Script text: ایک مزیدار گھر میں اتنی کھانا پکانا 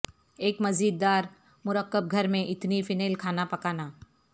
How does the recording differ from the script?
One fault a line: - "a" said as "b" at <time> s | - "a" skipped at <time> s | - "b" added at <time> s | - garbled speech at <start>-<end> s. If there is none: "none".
- "مرکب" added at 1.7 s
- "فینل" added at 2.8 s